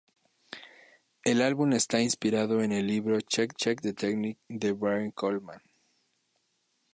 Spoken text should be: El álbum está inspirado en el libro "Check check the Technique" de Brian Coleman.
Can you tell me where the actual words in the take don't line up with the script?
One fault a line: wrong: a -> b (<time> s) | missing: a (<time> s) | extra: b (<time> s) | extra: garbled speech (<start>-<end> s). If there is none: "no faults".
no faults